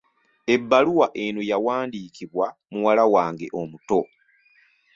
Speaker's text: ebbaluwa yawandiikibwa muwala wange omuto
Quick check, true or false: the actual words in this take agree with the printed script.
false